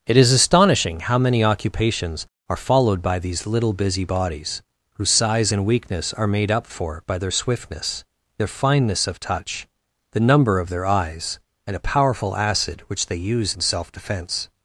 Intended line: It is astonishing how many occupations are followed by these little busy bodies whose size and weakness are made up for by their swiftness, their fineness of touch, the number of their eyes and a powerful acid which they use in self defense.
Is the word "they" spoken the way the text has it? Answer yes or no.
yes